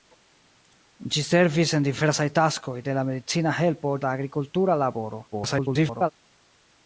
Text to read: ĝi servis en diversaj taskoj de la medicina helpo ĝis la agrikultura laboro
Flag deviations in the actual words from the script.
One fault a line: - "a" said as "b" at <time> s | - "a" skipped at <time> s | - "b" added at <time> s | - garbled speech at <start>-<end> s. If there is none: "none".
- "ĝis" skipped at 3.9 s
- garbled speech at 5.3-6.1 s